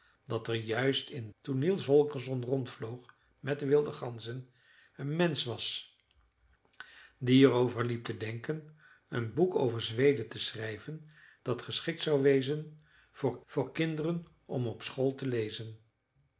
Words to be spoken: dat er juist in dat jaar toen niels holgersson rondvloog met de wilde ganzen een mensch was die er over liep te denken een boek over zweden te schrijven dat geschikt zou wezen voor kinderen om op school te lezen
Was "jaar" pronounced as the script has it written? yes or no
no